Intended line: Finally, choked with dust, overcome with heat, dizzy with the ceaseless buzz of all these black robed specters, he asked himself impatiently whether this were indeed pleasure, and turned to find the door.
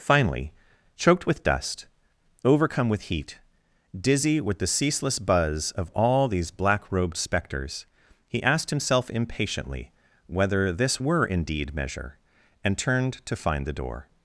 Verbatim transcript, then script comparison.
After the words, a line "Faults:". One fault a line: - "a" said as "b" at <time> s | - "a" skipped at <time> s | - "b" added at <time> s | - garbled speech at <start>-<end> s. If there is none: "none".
Finally, choked with dust, overcome with heat, dizzy with the ceaseless buzz of all these black robed specters, he asked himself impatiently whether this were indeed measure, and turned to find the door.
Faults:
- "pleasure" said as "measure" at 11.7 s